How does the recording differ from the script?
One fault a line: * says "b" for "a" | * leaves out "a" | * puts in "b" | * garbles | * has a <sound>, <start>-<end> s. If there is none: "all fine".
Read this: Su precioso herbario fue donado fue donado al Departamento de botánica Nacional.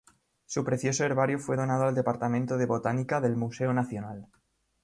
* leaves out "fue donado"
* puts in "del Museo"